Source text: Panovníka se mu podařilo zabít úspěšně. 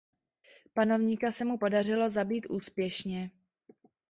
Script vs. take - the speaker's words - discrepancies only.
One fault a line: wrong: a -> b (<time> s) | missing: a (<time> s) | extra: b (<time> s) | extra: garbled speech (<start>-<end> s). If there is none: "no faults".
no faults